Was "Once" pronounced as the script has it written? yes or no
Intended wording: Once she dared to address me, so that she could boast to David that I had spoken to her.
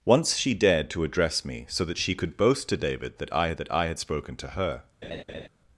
yes